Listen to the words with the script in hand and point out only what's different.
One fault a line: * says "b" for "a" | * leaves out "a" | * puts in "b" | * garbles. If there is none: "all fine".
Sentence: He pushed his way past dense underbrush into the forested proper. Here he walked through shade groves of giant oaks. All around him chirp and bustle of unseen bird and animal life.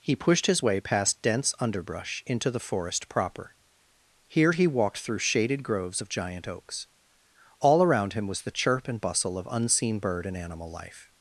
* says "forest" for "forested"
* says "shaded" for "shade"
* puts in "was the"